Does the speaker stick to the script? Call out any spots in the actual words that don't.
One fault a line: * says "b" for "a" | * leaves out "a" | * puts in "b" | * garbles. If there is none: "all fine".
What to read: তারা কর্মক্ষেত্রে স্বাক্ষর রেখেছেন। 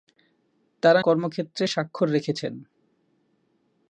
all fine